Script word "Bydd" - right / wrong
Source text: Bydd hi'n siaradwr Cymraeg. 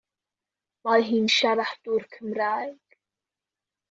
wrong